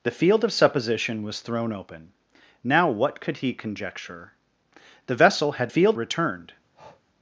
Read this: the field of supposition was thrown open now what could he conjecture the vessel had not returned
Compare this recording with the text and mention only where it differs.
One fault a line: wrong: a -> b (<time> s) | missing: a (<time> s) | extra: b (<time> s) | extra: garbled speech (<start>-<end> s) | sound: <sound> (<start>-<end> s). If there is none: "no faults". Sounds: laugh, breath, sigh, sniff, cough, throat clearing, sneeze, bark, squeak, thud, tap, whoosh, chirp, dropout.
wrong: not -> field (5.7 s)
sound: breath (6.7-7.0 s)